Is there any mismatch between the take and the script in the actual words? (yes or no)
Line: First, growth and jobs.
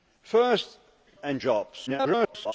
yes